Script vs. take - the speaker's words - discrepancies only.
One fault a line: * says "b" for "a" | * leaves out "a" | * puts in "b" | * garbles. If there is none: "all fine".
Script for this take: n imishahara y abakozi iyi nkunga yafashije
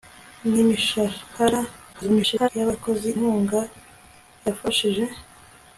* garbles
* leaves out "iyi"